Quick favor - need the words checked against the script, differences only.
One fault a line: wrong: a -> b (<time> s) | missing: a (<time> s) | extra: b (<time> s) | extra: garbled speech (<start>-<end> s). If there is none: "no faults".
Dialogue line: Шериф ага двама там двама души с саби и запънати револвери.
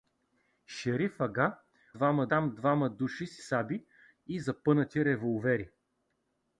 no faults